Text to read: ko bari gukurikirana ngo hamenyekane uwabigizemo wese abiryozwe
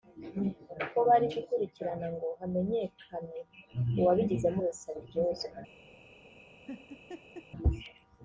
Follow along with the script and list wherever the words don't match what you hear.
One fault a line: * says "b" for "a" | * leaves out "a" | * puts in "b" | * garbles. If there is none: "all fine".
all fine